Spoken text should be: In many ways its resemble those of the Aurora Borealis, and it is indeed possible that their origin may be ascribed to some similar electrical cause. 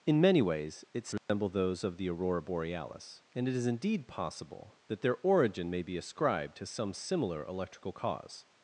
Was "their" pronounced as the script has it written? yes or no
yes